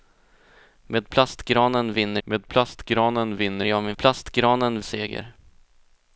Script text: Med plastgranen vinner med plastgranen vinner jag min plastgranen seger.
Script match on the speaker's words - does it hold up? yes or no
yes